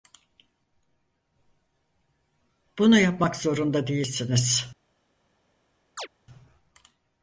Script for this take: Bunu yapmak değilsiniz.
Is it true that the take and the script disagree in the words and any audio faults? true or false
true